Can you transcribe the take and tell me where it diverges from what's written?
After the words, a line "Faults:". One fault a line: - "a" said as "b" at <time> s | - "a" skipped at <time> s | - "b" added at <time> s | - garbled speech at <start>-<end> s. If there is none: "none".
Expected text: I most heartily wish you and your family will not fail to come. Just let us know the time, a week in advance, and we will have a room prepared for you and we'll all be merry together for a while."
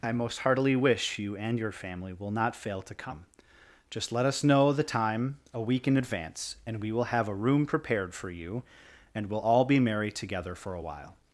I most heartily wish you and your family will not fail to come. Just let us know the time, a week in advance, and we will have a room prepared for you and we'll all be merry together for a while."
Faults:
none